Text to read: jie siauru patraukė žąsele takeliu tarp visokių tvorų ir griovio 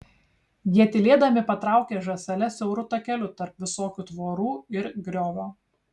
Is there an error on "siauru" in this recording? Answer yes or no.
yes